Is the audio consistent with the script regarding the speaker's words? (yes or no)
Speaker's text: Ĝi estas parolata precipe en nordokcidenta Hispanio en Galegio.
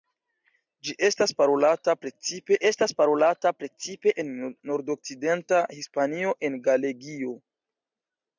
no